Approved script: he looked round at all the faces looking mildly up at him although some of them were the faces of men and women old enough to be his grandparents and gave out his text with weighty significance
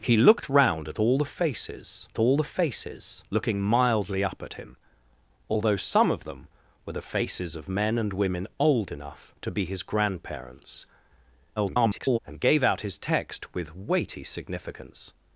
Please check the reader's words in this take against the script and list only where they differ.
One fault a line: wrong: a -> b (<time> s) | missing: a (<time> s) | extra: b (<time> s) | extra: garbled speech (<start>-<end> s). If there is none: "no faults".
extra: all the faces (2.2 s)
extra: garbled speech (11.6-12.2 s)